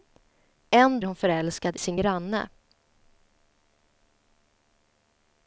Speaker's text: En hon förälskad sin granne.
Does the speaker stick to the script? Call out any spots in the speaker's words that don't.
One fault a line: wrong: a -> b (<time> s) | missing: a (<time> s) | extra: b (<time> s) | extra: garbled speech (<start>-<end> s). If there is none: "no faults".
no faults